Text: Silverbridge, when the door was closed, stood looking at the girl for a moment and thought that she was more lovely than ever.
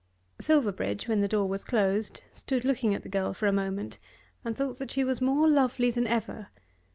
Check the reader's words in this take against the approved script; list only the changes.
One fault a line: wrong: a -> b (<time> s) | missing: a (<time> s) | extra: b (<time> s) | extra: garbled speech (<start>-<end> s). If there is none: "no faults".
no faults